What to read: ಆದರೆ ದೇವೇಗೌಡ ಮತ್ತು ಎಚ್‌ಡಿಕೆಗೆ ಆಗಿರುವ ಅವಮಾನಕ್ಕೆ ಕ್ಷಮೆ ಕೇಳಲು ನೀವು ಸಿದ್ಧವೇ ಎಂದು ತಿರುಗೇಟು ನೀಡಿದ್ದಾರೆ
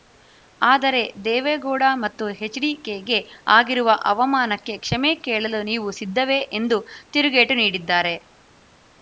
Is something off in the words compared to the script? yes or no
no